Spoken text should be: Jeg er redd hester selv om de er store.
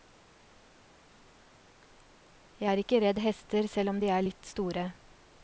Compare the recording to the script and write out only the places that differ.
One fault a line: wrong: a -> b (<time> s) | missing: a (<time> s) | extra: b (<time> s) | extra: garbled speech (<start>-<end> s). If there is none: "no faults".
extra: ikke (2.8 s)
extra: litt (4.2 s)